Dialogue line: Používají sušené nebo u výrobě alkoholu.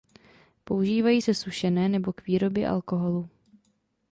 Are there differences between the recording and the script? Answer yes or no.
yes